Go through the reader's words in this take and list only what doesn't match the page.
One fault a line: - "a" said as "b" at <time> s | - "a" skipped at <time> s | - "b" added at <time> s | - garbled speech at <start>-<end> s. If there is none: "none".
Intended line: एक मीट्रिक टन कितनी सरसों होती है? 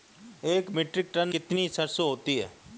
none